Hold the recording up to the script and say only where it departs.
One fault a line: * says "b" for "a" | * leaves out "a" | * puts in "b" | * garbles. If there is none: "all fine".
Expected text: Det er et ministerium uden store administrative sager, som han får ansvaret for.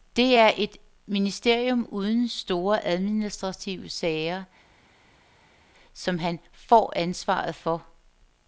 all fine